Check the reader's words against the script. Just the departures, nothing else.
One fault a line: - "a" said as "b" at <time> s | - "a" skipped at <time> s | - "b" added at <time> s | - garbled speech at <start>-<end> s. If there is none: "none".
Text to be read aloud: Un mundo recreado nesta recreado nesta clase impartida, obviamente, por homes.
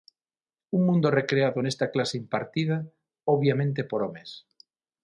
- "recreado nesta" skipped at 1.9 s